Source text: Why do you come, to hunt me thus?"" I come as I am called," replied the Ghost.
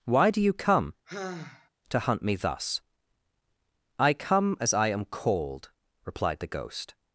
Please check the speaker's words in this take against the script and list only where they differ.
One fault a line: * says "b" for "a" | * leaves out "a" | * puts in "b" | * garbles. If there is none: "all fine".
all fine